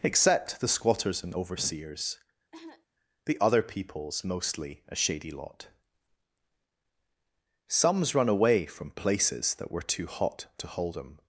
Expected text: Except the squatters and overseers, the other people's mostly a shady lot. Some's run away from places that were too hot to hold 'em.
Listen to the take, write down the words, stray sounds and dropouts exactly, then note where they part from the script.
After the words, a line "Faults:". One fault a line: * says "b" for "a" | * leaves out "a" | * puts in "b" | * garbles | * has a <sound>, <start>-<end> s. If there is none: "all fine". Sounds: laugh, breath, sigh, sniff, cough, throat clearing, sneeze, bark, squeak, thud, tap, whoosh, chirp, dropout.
Except the squatters and overseers, the other people's mostly a shady lot. Some's run away from places that were too hot to hold 'em.
Faults:
* has a cough, 2.5-2.9 s